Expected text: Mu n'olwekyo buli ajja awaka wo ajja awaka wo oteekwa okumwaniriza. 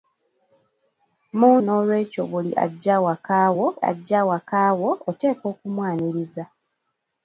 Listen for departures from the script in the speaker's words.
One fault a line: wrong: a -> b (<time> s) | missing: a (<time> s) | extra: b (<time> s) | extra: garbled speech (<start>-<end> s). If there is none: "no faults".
no faults